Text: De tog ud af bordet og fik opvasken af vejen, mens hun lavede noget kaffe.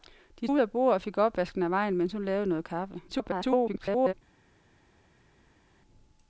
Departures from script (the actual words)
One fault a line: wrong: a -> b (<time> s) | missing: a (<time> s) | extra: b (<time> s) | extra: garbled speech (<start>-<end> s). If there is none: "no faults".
missing: tog (0.5 s)
extra: garbled speech (3.1-4.1 s)